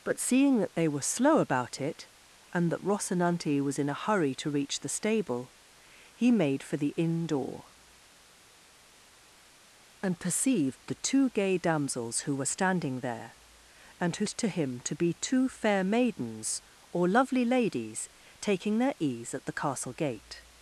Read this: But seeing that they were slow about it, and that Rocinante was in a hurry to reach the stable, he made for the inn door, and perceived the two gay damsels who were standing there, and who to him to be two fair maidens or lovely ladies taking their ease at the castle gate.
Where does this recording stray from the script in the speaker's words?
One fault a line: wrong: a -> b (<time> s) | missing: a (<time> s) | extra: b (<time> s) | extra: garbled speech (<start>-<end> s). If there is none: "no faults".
no faults